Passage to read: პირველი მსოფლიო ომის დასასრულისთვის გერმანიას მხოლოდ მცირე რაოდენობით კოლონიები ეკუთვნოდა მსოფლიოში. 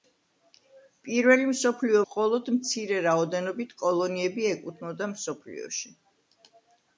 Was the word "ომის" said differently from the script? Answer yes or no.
yes